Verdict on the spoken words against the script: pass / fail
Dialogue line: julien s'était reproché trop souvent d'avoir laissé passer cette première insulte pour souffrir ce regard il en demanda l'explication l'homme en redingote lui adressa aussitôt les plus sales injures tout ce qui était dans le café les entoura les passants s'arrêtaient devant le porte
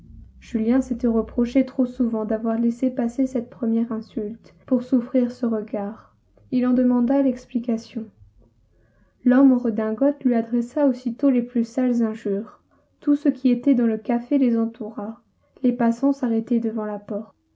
fail